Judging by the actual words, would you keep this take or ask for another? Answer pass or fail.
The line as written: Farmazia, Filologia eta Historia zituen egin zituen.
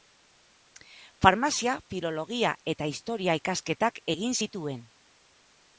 fail